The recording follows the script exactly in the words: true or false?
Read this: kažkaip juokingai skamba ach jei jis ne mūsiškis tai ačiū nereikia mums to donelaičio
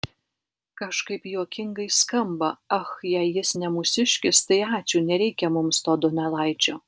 true